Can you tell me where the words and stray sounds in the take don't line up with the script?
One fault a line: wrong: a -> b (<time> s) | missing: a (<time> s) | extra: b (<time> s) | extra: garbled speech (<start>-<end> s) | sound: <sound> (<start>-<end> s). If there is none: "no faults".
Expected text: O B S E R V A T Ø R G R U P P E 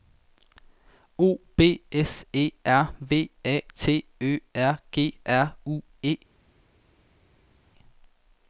missing: P P (5.8 s)